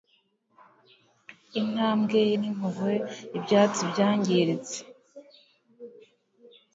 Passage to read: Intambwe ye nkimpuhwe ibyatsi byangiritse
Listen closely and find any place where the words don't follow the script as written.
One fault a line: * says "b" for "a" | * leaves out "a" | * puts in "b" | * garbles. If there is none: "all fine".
all fine